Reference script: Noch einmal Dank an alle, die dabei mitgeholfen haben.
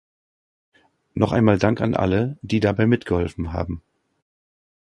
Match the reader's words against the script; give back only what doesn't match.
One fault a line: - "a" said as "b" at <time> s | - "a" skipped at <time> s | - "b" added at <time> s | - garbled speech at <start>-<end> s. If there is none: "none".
none